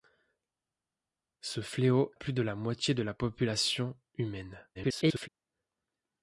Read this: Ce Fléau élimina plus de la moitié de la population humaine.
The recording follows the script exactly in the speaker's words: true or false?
false